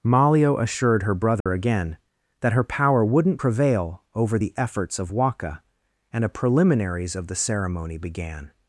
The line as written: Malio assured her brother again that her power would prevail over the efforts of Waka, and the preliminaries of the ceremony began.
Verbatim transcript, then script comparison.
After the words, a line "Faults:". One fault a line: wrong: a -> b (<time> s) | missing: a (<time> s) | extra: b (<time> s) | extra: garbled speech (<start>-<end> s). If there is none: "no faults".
Malio assured her brother again that her power wouldn't prevail over the efforts of Waka, and a preliminaries of the ceremony began.
Faults:
wrong: would -> wouldn't (3.0 s)
wrong: the -> a (6.2 s)